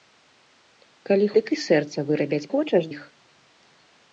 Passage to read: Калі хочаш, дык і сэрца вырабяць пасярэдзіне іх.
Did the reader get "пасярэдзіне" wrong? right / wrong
wrong